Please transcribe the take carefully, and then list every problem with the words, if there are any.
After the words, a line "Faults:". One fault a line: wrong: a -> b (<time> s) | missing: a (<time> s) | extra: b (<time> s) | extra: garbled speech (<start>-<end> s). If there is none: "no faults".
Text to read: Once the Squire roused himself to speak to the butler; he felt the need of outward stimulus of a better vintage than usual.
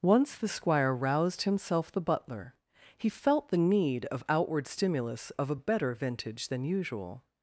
Once the Squire roused himself the butler; he felt the need of outward stimulus of a better vintage than usual.
Faults:
missing: to speak to (1.9 s)